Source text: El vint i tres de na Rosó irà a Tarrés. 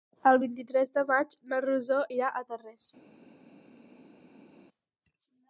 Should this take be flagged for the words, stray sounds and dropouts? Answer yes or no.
yes